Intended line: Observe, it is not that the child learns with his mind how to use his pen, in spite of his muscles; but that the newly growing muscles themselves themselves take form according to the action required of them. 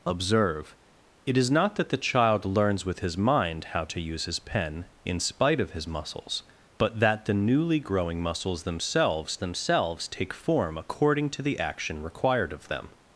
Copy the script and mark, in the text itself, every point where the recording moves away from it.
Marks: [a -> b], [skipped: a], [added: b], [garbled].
Observe, it is not that the child learns with his mind how to use his pen, in spite of his muscles; but that the newly growing muscles themselves themselves take form according to the action required of them.